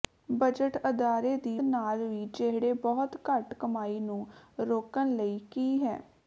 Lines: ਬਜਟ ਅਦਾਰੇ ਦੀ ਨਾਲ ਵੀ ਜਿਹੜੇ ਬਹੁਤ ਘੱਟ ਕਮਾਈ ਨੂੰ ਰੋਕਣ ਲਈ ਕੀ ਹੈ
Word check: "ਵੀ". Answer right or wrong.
right